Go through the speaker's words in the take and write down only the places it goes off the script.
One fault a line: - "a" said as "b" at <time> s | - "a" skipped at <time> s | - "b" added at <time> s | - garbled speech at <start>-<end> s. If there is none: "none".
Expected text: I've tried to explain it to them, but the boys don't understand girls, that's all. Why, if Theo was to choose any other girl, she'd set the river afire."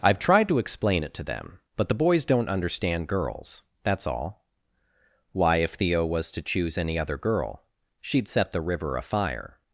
none